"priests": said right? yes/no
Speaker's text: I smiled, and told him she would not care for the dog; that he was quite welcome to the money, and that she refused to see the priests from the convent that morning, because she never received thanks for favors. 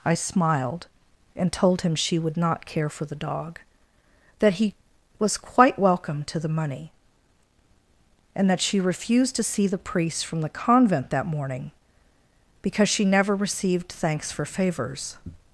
no